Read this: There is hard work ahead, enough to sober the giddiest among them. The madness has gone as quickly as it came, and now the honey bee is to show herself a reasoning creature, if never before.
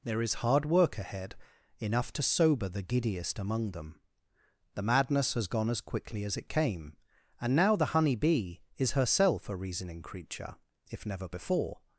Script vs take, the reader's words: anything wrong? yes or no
yes